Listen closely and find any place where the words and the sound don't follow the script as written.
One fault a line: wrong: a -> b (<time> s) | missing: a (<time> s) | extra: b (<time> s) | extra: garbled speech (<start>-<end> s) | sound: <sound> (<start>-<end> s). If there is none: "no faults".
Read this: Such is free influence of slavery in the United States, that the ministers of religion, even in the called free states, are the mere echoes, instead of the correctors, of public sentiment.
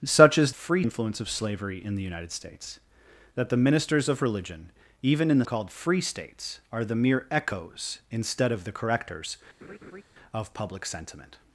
sound: laugh (9.6-10.0 s)